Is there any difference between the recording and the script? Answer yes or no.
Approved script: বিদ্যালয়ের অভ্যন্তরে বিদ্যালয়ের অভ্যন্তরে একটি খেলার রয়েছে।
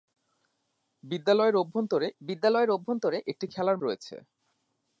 no